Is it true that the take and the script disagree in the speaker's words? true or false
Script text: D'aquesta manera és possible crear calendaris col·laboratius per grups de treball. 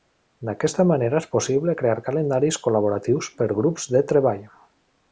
false